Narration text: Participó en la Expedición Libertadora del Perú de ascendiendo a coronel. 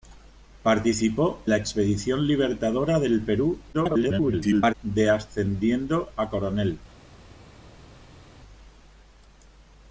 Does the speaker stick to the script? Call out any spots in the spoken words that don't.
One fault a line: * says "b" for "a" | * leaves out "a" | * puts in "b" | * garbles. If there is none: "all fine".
* leaves out "en"
* garbles